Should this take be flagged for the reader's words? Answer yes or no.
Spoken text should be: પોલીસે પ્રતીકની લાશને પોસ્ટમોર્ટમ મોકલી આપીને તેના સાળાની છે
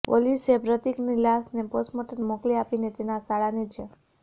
no